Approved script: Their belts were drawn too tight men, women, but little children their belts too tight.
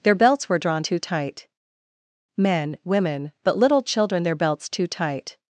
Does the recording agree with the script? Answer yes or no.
yes